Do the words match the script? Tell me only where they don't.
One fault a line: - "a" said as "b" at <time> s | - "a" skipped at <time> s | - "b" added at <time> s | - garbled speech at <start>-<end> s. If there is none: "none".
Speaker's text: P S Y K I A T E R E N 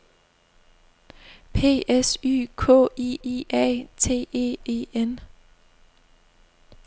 - "I" added at 3.2 s
- "R" skipped at 4.6 s